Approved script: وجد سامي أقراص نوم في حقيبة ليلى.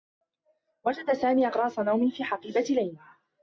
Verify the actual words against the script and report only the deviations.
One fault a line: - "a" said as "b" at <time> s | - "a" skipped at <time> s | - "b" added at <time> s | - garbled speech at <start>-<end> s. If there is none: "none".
none